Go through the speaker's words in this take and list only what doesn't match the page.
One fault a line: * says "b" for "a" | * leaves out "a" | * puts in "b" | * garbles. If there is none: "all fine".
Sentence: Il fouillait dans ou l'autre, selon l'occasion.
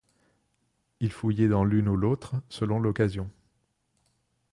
* puts in "l'une"